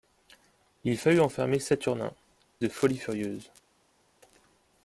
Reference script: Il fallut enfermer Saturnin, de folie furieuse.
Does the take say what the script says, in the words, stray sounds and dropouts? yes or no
yes